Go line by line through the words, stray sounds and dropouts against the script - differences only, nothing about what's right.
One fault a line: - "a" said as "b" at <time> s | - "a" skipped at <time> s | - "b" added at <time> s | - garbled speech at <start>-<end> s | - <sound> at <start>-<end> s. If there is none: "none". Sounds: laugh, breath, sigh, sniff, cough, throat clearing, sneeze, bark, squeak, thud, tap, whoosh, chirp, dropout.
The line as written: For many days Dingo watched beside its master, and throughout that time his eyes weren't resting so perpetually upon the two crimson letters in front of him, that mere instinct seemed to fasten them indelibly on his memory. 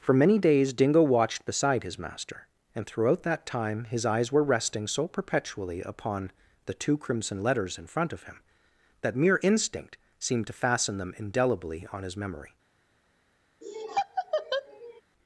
- "its" said as "his" at 1.8 s
- "weren't" said as "were" at 4.3 s
- laugh at 13.6-15.0 s